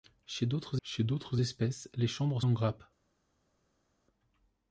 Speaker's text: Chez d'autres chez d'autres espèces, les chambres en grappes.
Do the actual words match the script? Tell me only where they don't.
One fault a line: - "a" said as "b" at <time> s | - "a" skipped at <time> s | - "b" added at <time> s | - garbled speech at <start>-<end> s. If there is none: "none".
none